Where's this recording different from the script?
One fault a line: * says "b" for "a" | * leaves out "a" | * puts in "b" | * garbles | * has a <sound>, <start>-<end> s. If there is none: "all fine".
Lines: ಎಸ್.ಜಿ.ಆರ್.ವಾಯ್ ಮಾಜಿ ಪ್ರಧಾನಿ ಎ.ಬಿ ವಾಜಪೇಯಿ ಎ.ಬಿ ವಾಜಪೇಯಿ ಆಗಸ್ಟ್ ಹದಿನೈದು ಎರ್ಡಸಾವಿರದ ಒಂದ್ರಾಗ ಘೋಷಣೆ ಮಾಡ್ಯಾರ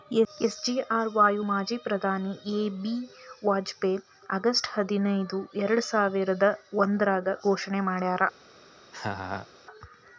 * leaves out "ಎ.ಬಿ ವಾಜಪೇಯಿ"
* has a laugh, 8.9-9.5 s